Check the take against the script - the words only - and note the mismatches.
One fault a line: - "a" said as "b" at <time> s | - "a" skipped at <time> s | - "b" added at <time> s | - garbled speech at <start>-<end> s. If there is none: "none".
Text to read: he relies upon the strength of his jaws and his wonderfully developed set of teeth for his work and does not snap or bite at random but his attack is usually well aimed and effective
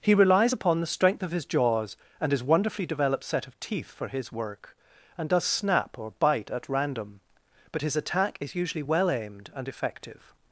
- "not" skipped at 5.4 s